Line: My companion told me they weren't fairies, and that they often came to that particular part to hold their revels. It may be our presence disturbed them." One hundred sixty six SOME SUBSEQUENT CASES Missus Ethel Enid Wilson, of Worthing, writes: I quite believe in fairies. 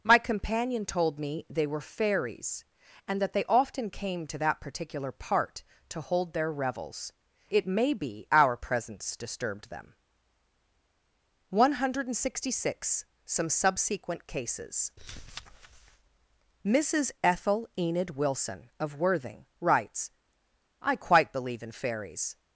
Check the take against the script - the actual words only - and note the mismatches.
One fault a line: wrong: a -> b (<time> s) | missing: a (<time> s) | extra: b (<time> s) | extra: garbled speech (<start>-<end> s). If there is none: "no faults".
wrong: weren't -> were (1.7 s)